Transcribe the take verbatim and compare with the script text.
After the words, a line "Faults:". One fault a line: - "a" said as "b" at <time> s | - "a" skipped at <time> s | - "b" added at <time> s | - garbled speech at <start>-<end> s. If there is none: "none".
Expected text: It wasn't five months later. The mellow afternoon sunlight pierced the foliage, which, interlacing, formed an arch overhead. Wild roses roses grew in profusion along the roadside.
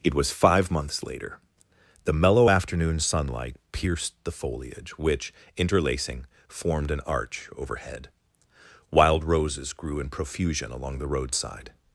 It was five months later. The mellow afternoon sunlight pierced the foliage, which, interlacing, formed an arch overhead. Wild roses grew in profusion along the roadside.
Faults:
- "wasn't" said as "was" at 0.1 s
- "roses" skipped at 9.7 s